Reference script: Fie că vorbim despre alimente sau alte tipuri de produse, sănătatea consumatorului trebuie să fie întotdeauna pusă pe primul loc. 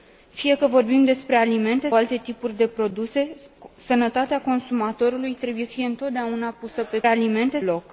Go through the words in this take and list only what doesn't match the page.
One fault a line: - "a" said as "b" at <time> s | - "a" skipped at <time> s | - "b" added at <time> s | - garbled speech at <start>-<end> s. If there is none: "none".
- "sau" skipped at 1.9 s
- "să" skipped at 5.6 s
- "primul" said as "alimente" at 7.0 s